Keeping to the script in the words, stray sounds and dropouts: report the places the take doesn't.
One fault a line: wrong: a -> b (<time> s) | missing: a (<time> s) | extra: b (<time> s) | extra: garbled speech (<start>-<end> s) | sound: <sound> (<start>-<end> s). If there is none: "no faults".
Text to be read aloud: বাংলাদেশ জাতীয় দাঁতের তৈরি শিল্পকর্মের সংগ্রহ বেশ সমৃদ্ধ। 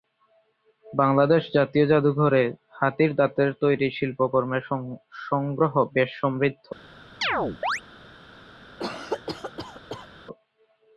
extra: জাদুঘরে হাতির (1.9 s)
sound: chirp (7.2-7.8 s)
sound: cough (8.8-10.1 s)